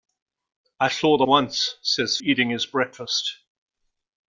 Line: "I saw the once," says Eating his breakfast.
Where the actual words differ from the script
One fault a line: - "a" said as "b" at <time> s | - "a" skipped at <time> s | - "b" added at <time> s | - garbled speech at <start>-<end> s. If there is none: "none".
none